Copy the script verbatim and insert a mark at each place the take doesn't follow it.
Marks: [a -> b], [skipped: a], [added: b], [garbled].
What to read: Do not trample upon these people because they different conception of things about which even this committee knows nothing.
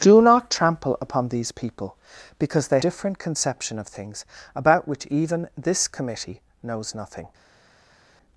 Do not trample upon these people because they different conception of things about which even this committee knows nothing.